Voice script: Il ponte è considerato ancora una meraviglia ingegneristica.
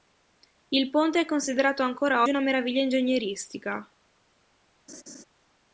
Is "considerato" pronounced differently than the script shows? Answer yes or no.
no